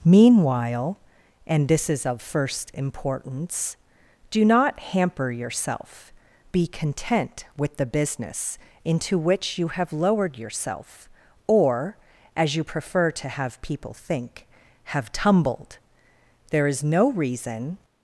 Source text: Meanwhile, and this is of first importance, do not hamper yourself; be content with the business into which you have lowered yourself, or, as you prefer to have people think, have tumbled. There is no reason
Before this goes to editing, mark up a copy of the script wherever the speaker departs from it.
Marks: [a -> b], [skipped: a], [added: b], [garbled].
Meanwhile, and this is of first importance, do not hamper yourself; be content with the business into which you have lowered yourself, or, as you prefer to have people think, have tumbled. There is no reason